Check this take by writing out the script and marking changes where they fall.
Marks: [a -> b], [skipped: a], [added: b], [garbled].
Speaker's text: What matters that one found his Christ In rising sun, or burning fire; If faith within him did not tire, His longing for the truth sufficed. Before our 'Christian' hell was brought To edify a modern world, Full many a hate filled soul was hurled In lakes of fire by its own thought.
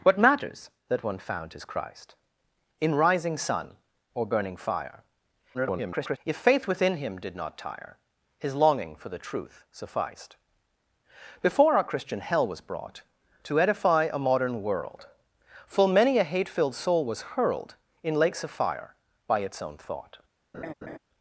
What matters that one found his Christ In rising sun, or burning fire; [garbled] If faith within him did not tire, His longing for the truth sufficed. Before our 'Christian' hell was brought To edify a modern world, Full many a hate filled soul was hurled In lakes of fire by its own thought.